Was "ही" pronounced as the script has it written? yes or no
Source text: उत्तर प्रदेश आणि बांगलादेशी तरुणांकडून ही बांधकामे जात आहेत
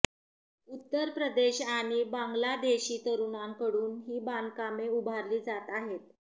yes